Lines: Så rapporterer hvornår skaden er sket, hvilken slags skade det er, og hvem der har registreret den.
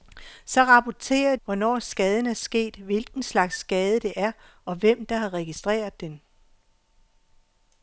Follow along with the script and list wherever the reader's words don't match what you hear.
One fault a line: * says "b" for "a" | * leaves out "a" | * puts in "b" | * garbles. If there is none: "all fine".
all fine